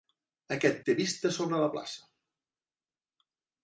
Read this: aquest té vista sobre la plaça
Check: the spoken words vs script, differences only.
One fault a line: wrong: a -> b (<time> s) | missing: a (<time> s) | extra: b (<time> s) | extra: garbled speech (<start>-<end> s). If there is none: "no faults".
no faults